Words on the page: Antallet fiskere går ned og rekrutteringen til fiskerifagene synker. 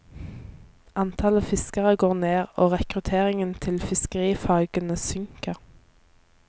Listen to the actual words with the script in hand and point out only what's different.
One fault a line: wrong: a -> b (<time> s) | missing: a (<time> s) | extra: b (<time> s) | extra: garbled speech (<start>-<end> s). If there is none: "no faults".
no faults